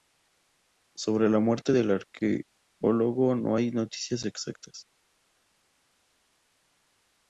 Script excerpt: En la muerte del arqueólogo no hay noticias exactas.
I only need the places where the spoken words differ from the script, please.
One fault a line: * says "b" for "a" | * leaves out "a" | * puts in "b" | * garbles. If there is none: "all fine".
* says "Sobre" for "En"